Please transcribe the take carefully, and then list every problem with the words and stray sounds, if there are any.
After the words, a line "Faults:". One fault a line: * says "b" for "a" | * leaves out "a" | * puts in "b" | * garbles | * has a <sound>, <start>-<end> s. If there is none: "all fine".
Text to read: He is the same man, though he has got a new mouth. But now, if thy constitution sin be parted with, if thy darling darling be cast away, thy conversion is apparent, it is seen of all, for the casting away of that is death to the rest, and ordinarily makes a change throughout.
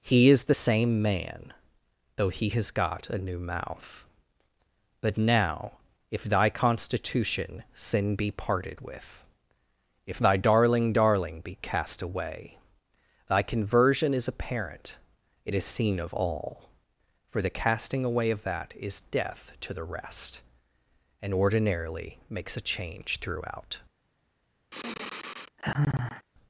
He is the same man, though he has got a new mouth. But now, if thy constitution sin be parted with, if thy darling darling be cast away, thy conversion is apparent, it is seen of all, for the casting away of that is death to the rest, and ordinarily makes a change throughout.
Faults:
* has a sigh, 24.7-26.3 s